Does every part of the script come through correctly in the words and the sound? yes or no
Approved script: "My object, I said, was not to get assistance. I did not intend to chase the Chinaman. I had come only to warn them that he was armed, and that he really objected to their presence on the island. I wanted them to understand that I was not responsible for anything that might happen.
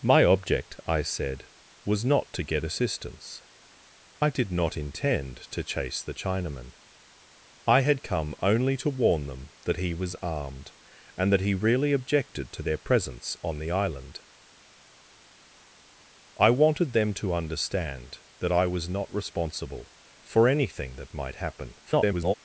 no